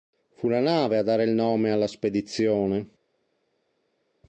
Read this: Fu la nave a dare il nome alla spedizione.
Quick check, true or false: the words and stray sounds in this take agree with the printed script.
true